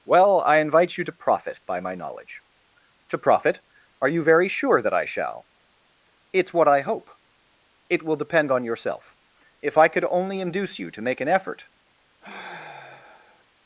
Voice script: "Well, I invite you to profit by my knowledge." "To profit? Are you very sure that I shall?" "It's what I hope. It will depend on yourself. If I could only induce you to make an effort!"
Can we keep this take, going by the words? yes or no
yes